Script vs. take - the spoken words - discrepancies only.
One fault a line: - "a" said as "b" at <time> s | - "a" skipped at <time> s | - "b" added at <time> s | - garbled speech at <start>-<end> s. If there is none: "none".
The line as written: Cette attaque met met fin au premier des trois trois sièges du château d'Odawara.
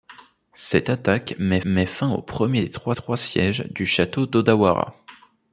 none